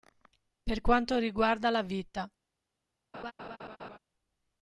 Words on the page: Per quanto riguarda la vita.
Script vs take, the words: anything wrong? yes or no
no